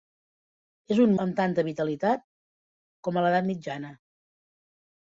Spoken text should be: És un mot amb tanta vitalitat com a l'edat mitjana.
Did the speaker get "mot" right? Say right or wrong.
wrong